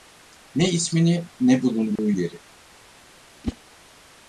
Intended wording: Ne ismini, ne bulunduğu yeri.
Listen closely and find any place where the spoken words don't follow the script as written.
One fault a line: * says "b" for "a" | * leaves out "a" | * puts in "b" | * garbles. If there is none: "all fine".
all fine